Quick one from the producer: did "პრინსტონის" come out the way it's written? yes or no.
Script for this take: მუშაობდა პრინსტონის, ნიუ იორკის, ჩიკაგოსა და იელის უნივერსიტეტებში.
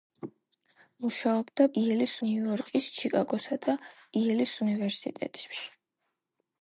no